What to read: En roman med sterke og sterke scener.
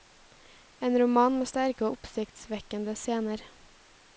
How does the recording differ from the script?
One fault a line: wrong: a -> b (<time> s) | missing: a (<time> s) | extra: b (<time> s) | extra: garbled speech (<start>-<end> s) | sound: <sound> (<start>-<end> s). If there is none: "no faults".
wrong: sterke -> oppsiktsvekkende (1.9 s)